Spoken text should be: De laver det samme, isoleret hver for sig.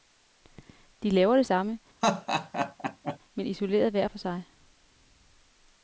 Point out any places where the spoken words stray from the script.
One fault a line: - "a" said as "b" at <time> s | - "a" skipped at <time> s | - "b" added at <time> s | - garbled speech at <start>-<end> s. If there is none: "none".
- "men" added at 3.3 s